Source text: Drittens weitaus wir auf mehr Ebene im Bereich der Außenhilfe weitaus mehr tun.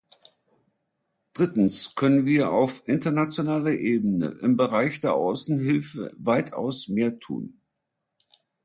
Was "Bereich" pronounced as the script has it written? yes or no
yes